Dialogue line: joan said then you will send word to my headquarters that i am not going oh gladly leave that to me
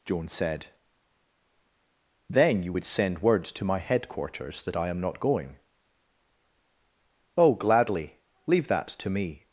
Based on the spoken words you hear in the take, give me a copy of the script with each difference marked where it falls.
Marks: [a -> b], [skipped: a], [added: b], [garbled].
joan said then you [will -> would] send word to my headquarters that i am not going oh gladly leave that to me